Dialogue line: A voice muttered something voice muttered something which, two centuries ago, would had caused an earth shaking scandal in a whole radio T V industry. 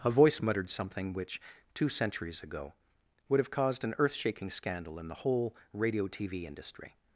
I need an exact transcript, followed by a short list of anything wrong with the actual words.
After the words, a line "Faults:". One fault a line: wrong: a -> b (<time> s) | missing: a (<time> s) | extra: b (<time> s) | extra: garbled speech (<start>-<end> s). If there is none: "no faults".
A voice muttered something which, two centuries ago, would have caused an earth shaking scandal in the whole radio T V industry.
Faults:
missing: voice muttered something (1.1 s)
wrong: had -> have (3.4 s)
wrong: a -> the (5.1 s)